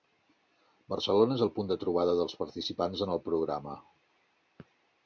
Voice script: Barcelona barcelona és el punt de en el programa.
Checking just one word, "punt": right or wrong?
right